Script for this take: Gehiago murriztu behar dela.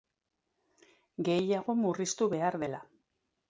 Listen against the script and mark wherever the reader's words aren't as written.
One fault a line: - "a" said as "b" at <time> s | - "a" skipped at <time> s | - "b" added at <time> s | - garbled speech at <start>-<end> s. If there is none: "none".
none